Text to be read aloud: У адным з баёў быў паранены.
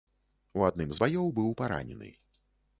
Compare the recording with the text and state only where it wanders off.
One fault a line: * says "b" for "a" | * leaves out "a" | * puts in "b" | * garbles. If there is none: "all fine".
all fine